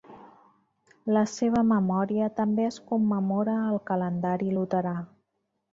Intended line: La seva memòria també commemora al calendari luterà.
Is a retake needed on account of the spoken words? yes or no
yes